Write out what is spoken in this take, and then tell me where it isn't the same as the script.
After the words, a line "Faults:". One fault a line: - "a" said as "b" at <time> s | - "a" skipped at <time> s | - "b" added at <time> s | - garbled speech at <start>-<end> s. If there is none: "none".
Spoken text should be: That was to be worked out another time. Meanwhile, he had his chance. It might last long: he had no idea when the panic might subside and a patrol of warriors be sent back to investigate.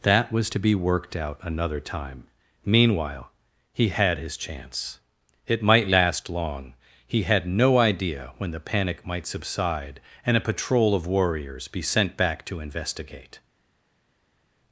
That was to be worked out another time. Meanwhile, he had his chance. It might last long: he had no idea when the panic might subside and a patrol of warriors be sent back to investigate.
Faults:
none